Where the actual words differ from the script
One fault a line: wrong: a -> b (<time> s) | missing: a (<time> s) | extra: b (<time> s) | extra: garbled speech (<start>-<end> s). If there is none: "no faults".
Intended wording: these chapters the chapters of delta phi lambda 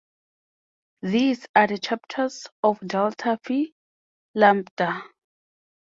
wrong: chapters -> are (1.6 s)